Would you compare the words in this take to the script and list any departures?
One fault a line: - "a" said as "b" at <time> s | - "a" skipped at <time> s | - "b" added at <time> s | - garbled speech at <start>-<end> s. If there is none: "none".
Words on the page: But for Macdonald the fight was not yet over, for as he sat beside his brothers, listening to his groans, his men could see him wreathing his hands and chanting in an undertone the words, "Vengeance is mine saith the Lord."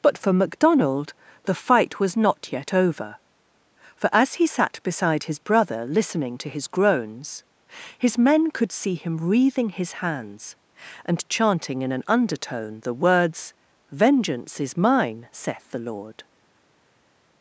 - "brothers" said as "brother" at 5.4 s